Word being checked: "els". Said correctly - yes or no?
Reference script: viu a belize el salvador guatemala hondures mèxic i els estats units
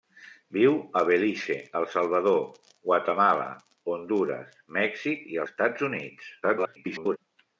no